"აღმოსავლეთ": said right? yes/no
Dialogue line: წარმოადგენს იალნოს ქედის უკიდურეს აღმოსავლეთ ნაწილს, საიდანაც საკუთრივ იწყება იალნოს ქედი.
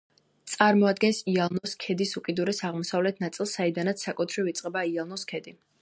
yes